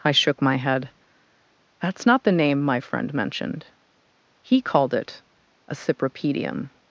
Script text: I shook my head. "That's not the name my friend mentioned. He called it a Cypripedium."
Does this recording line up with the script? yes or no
yes